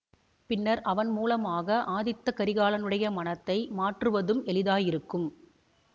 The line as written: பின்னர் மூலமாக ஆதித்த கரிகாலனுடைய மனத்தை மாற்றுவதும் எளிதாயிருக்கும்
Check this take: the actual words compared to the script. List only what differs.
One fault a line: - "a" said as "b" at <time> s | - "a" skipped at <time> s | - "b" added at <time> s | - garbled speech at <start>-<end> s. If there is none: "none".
- "அவன்" added at 0.8 s